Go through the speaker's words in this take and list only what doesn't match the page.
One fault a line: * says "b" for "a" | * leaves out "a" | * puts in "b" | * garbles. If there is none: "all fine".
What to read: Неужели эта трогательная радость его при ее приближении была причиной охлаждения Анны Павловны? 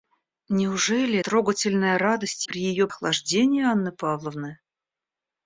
* leaves out "эта"
* leaves out "его"
* leaves out "приближении была причиной"